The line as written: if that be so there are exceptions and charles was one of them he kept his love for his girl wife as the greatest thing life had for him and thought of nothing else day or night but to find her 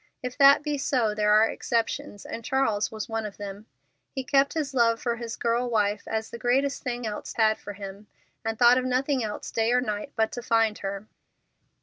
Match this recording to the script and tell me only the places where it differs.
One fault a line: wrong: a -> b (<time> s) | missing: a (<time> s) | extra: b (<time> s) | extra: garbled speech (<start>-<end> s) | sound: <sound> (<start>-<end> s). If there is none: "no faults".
wrong: life -> else (7.1 s)